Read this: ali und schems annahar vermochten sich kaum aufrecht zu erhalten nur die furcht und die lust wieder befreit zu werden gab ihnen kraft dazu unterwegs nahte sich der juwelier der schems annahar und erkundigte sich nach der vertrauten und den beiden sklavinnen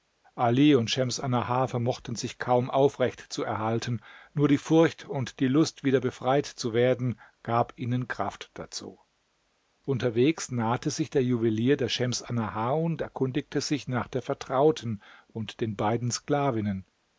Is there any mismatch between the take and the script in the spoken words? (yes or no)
no